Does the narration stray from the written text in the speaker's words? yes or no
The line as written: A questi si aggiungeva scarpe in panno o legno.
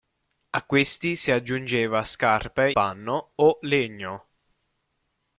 yes